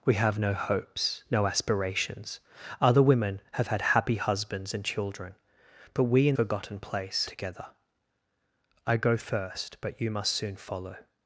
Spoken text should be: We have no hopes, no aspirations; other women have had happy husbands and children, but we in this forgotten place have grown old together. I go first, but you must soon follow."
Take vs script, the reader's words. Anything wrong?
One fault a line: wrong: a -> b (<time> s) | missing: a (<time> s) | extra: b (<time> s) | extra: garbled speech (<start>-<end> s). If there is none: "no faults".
missing: this (6.4 s)
missing: have grown old (7.3 s)